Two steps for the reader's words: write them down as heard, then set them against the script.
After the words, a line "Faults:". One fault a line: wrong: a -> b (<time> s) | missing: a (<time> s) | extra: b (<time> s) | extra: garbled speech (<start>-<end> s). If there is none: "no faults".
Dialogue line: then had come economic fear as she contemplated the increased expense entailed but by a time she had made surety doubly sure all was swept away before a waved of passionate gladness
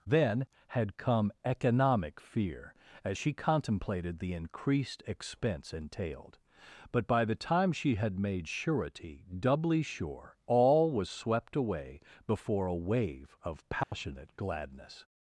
then had come economic fear as she contemplated the increased expense entailed but by the time she had made surety doubly sure all was swept away before a wave of passionate gladness
Faults:
wrong: a -> the (7.2 s)
wrong: waved -> wave (12.7 s)